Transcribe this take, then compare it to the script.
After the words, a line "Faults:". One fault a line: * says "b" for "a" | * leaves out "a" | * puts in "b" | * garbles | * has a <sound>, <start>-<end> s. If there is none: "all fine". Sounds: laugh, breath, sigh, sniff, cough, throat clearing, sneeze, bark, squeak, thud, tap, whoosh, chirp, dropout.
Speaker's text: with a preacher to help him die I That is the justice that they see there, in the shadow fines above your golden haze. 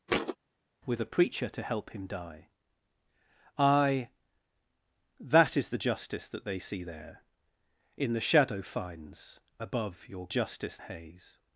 with a preacher to help him die I That is the justice that they see there, in the shadow fines above your justice haze.
Faults:
* has a thud, 0.1-0.4 s
* says "justice" for "golden"